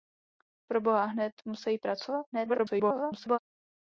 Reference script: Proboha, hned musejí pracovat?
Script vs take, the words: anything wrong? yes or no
yes